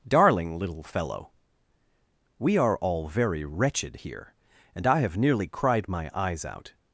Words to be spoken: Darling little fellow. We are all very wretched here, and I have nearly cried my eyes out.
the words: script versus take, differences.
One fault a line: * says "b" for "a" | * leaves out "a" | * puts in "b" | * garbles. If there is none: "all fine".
all fine